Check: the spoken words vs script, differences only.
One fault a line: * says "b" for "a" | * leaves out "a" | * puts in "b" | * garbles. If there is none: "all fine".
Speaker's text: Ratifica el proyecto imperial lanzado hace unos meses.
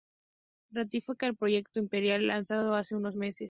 all fine